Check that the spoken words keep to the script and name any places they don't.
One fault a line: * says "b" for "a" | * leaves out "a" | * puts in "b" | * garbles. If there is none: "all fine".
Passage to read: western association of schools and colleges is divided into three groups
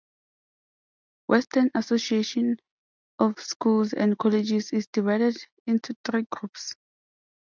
all fine